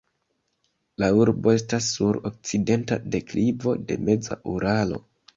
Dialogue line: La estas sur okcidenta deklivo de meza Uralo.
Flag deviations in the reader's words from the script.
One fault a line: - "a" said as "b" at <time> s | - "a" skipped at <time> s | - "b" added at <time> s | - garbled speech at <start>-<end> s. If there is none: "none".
- "urbo" added at 1.2 s